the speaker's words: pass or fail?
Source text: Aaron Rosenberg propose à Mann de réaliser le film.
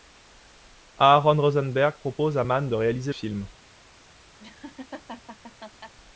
fail